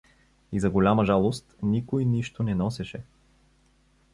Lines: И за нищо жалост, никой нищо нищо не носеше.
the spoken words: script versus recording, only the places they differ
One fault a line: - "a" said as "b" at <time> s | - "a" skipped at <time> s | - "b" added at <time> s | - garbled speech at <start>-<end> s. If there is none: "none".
- "нищо" said as "голяма" at 0.7 s
- "нищо" skipped at 2.4 s